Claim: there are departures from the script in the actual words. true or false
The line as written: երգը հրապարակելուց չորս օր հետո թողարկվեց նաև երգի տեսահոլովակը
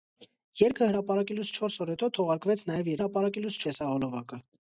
true